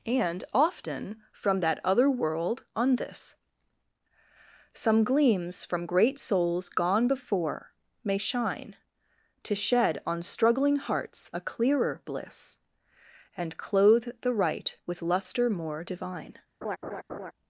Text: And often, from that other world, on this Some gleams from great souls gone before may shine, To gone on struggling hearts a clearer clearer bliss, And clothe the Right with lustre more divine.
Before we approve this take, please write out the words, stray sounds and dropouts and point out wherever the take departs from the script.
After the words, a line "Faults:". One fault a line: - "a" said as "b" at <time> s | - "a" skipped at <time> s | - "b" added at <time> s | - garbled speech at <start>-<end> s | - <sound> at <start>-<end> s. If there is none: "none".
And often, from that other world, on this Some gleams from great souls gone before may shine, To shed on struggling hearts a clearer bliss, And clothe the Right with lustre more divine.
Faults:
- "gone" said as "shed" at 9.6 s
- "clearer" skipped at 12.0 s
- laugh at 16.6-17.3 s